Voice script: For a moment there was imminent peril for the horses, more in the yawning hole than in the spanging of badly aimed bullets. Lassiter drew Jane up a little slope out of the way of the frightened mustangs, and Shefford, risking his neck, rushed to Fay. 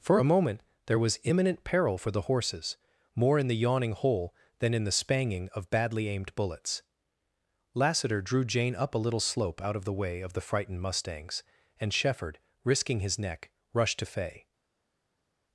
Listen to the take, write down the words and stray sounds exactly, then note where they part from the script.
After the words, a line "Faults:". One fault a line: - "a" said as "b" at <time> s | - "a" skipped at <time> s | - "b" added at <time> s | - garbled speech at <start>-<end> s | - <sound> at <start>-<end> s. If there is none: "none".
For a moment there was imminent peril for the horses, more in the yawning hole than in the spanging of badly aimed bullets. Lassiter drew Jane up a little slope out of the way of the frightened mustangs, and Shefford, risking his neck, rushed to Fay.
Faults:
none